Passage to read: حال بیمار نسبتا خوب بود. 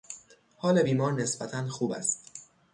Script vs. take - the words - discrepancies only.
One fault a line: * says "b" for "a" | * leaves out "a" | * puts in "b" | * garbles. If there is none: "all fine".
* says "است" for "بود"